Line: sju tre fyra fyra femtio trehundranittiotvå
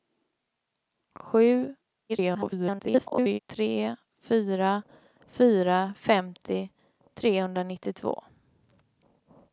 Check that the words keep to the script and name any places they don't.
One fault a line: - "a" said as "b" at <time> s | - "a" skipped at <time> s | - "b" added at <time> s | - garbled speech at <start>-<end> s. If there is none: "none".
- garbled speech at 2.1-3.4 s